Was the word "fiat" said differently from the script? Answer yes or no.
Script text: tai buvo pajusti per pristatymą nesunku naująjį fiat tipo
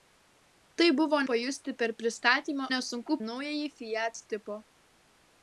no